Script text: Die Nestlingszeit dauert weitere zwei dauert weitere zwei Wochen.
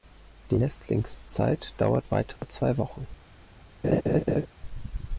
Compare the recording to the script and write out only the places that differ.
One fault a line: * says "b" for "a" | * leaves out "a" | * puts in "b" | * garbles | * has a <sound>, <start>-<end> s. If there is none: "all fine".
* has a dropout, 2.4-2.4 s
* leaves out "dauert weitere zwei"
* has a laugh, 3.8-4.5 s